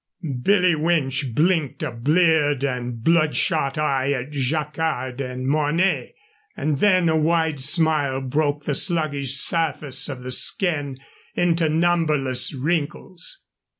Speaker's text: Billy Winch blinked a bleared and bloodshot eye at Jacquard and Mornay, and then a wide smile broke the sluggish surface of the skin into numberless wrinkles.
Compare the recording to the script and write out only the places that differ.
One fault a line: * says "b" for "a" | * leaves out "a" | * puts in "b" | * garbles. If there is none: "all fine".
all fine